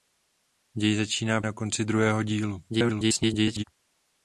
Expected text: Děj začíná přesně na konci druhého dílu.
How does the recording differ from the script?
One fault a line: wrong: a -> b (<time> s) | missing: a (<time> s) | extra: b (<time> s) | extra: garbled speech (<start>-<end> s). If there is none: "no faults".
missing: přesně (1.4 s)
extra: garbled speech (2.7-3.6 s)